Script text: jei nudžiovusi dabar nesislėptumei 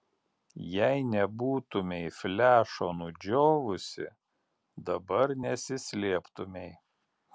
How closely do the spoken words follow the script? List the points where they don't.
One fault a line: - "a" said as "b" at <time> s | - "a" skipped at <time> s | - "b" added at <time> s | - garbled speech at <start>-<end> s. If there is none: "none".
- "nebūtumei flešo" added at 1.1 s